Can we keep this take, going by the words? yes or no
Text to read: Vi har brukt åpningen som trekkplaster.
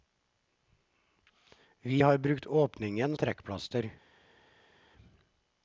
no